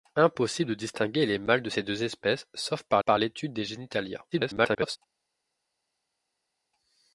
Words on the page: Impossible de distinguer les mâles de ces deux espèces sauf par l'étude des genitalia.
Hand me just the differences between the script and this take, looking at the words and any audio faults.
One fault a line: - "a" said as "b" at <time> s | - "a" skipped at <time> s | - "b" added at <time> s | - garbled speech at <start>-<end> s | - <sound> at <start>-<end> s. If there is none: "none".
- "par" added at 3.0 s
- garbled speech at 4.3-5.0 s